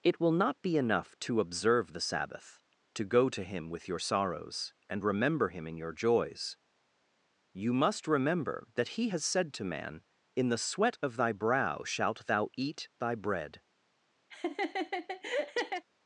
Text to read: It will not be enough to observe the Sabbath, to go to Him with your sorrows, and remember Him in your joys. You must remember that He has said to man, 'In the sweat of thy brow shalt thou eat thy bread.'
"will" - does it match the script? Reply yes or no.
yes